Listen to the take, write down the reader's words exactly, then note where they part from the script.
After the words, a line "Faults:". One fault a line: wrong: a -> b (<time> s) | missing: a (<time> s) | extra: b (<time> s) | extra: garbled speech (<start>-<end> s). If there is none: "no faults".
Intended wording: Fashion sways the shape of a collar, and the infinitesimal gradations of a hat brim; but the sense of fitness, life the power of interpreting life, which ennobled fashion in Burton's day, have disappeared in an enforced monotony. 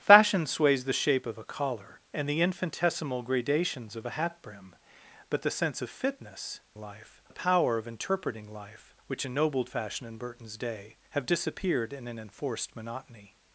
Fashion sways the shape of a collar, and the infinitesimal gradations of a hat brim; but the sense of fitness, life the power of interpreting life, which ennobled fashion in Burton's day, have disappeared in an enforced monotony.
Faults:
no faults